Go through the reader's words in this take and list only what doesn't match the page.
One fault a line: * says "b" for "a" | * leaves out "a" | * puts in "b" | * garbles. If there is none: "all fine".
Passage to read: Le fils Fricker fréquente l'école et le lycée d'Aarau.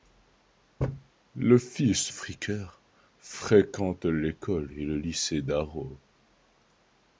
all fine